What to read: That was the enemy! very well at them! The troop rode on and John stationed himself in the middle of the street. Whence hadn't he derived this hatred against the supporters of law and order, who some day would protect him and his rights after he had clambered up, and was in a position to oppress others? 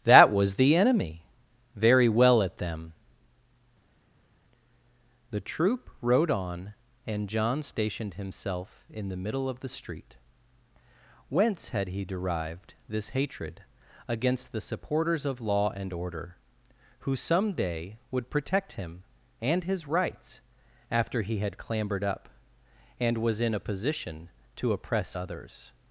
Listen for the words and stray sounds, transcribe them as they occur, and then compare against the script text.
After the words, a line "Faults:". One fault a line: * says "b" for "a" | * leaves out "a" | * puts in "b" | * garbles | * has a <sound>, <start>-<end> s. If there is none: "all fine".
That was the enemy! very well at them! The troop rode on and John stationed himself in the middle of the street. Whence had he derived this hatred against the supporters of law and order, who some day would protect him and his rights after he had clambered up, and was in a position to oppress others?
Faults:
* says "had" for "hadn't"